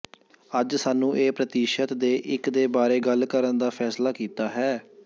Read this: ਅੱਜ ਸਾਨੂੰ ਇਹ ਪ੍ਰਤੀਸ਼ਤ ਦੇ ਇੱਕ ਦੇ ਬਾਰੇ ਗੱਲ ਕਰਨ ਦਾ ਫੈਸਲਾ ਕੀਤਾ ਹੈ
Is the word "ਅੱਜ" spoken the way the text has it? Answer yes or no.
yes